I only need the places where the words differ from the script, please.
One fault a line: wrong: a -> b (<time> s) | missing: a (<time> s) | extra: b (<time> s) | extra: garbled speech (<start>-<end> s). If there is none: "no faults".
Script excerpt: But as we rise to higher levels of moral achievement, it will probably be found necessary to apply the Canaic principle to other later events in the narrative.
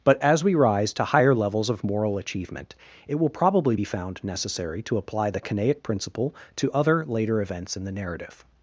no faults